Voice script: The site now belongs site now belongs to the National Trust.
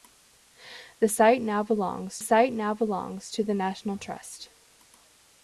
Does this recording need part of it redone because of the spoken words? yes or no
no